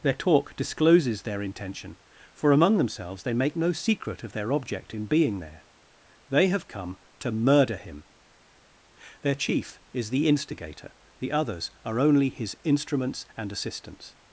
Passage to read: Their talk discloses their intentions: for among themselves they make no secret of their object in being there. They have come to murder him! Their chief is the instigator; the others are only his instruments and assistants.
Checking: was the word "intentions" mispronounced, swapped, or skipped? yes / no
yes